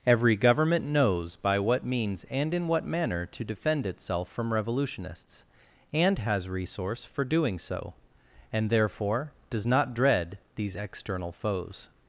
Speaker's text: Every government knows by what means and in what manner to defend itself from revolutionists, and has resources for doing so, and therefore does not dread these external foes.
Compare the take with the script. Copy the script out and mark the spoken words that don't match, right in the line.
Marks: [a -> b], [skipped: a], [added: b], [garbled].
Every government knows by what means and in what manner to defend itself from revolutionists, and has [resources -> resource] for doing so, and therefore does not dread these external foes.